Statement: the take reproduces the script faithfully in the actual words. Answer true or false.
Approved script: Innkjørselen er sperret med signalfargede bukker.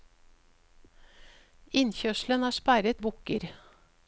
false